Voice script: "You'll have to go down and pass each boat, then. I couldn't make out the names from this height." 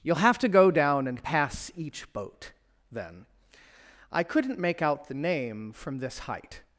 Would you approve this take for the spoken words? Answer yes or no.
no